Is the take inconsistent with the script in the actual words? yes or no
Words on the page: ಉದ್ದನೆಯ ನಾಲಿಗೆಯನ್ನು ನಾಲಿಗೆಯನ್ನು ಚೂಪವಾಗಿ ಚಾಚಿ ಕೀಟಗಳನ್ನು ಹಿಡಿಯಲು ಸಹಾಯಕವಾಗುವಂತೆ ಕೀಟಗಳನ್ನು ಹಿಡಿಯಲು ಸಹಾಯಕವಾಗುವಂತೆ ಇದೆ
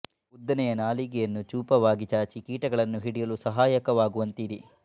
yes